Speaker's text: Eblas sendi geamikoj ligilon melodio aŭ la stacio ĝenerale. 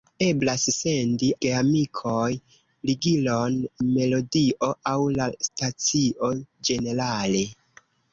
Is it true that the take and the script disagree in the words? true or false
false